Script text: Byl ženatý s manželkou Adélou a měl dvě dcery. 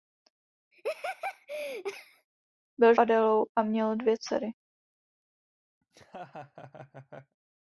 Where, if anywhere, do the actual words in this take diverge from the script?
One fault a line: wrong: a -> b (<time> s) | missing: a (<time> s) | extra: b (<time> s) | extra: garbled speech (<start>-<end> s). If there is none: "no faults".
missing: ženatý s manželkou (2.9 s)